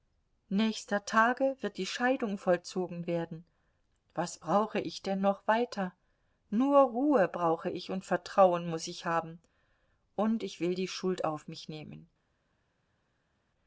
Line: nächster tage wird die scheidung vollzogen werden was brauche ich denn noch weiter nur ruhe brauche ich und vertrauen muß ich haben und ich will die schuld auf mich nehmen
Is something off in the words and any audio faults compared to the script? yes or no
no